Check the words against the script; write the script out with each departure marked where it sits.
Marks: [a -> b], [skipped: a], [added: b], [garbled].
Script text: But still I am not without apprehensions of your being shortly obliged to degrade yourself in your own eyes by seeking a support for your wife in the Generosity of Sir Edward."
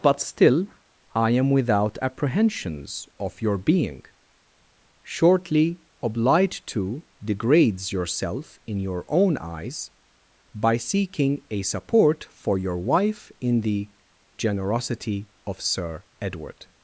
But still I am [skipped: not] without apprehensions of your being shortly obliged to [degrade -> degrades] yourself in your own eyes by seeking a support for your wife in the Generosity of Sir Edward."